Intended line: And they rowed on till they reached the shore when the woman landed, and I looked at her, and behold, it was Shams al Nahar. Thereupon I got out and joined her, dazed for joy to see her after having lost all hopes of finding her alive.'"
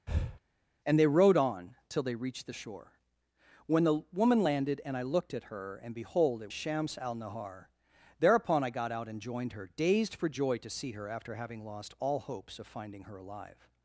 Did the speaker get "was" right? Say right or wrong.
wrong